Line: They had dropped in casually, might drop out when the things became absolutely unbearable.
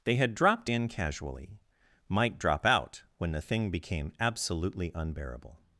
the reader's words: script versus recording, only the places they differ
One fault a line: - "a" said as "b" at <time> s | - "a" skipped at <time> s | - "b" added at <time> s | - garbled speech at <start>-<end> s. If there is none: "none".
- "things" said as "thing" at 3.4 s